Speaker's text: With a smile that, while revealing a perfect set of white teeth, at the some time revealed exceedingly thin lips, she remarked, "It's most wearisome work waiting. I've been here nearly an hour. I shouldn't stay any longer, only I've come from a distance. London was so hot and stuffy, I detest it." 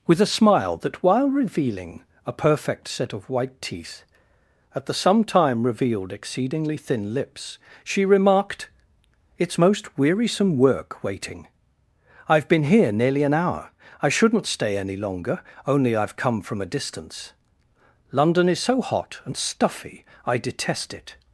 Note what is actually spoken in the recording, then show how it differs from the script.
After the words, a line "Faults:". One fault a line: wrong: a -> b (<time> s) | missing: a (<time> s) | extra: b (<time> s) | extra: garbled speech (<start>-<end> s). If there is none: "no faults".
With a smile that, while revealing a perfect set of white teeth, at the some time revealed exceedingly thin lips, she remarked, "It's most wearisome work waiting. I've been here nearly an hour. I shouldn't stay any longer, only I've come from a distance. London is so hot and stuffy, I detest it."
Faults:
wrong: was -> is (18.5 s)